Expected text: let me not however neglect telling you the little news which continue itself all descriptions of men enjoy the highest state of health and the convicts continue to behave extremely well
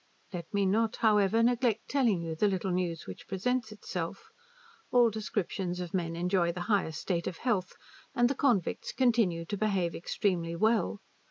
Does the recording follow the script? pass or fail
fail